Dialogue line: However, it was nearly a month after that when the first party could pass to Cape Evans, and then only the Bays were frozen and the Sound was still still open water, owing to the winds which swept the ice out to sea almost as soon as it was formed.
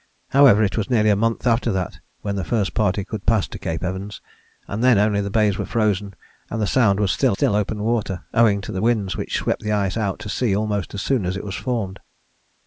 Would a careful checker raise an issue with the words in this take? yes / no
no